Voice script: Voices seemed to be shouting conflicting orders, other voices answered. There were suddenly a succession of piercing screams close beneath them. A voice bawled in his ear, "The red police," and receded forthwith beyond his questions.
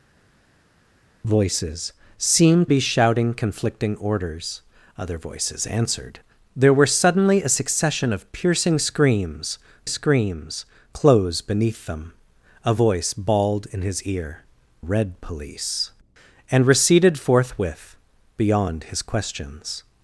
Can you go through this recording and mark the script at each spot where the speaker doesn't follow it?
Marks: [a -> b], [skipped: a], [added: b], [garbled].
Voices seemed [skipped: to] be shouting conflicting orders, other voices answered. There were suddenly a succession of piercing screams [added: screams] close beneath them. A voice bawled in his ear, [skipped: "The] red police," and receded forthwith beyond his questions.